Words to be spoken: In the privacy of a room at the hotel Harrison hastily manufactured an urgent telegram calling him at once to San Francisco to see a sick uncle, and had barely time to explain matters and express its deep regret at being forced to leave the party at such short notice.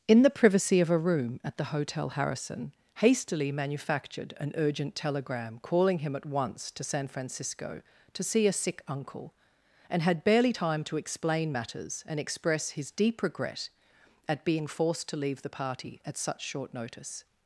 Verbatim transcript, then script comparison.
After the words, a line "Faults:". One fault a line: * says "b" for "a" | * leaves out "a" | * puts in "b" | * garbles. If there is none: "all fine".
In the privacy of a room at the hotel Harrison hastily manufactured an urgent telegram calling him at once to San Francisco to see a sick uncle, and had barely time to explain matters and express his deep regret at being forced to leave the party at such short notice.
Faults:
* says "his" for "its"